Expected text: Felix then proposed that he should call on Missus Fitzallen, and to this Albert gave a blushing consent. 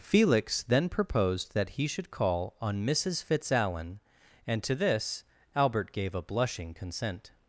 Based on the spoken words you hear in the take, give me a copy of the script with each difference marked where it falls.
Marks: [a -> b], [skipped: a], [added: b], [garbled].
Felix then proposed that he should call on Missus Fitzallen, and to this Albert gave a blushing consent.